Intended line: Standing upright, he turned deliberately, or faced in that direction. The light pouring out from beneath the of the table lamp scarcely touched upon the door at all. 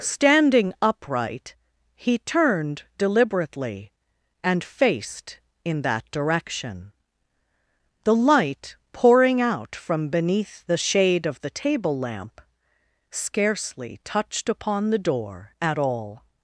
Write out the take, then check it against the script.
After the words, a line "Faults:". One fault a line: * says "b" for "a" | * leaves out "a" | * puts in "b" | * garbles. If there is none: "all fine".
Standing upright, he turned deliberately, and faced in that direction. The light pouring out from beneath the shade of the table lamp scarcely touched upon the door at all.
Faults:
* says "and" for "or"
* puts in "shade"